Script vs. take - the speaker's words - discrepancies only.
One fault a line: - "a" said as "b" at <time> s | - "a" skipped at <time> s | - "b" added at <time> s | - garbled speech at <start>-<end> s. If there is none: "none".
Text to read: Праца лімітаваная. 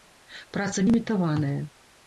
none